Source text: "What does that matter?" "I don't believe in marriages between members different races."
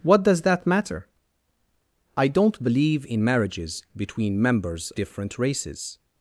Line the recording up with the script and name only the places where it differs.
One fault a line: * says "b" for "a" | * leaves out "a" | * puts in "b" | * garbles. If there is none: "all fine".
all fine